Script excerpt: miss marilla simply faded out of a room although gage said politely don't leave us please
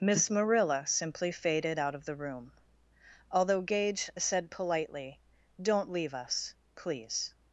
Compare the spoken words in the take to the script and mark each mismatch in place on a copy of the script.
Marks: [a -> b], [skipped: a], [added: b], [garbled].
miss marilla simply faded out of [a -> the] room although gage said politely don't leave us please